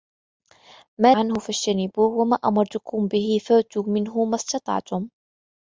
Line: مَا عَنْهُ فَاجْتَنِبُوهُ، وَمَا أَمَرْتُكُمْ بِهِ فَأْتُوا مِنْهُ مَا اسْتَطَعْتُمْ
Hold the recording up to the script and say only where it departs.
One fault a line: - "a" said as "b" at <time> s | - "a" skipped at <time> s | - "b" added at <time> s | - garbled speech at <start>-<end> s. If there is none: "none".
none